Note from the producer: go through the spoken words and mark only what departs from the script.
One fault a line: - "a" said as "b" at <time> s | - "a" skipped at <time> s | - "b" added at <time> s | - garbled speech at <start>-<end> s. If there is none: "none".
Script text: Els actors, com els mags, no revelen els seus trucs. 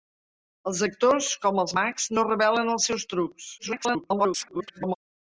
- garbled speech at 3.6-4.9 s